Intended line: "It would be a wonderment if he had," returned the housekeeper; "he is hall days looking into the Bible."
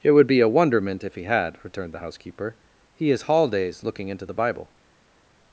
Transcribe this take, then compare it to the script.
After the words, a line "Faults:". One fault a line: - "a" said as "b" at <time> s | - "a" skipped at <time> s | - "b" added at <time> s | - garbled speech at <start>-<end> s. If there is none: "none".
"It would be a wonderment if he had," returned the housekeeper; "he is hall days looking into the Bible."
Faults:
none